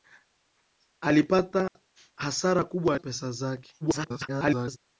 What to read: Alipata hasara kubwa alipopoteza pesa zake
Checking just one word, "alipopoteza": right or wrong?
wrong